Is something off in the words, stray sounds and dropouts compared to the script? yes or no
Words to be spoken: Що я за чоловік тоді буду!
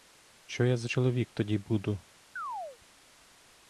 yes